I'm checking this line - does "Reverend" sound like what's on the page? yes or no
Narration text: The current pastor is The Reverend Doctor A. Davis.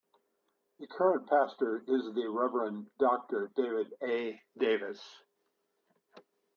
yes